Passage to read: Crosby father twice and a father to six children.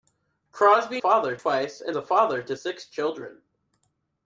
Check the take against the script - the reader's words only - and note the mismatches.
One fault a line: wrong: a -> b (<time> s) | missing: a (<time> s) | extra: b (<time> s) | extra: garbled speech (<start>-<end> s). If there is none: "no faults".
no faults